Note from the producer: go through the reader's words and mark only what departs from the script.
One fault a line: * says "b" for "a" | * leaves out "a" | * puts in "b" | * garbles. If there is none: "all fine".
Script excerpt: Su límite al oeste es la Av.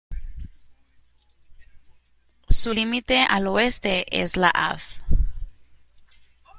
all fine